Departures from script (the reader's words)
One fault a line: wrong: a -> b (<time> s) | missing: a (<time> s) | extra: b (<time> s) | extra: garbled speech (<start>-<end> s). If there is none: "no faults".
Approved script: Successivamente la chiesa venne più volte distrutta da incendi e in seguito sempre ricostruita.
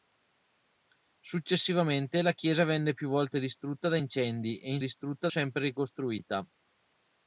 wrong: seguito -> distrutta (4.8 s)